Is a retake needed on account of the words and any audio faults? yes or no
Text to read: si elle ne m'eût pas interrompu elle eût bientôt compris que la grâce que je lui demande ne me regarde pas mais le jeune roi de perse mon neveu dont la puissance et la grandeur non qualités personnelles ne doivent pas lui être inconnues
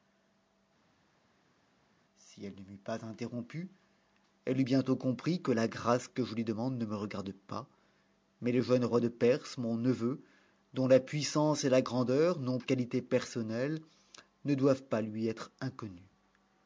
no